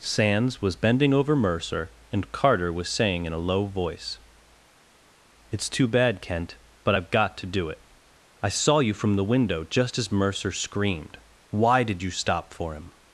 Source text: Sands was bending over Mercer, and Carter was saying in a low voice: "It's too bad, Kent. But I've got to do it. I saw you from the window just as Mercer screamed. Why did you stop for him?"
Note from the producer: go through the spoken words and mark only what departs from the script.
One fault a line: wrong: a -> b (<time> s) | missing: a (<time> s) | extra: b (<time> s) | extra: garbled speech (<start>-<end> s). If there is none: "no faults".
no faults